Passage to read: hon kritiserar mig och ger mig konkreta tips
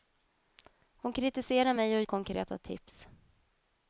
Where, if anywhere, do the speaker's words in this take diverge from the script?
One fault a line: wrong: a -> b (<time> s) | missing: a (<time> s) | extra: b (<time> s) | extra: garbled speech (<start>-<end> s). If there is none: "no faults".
missing: ger mig (2.0 s)